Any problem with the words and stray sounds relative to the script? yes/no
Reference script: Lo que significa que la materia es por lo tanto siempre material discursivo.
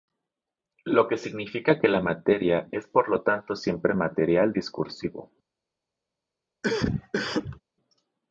yes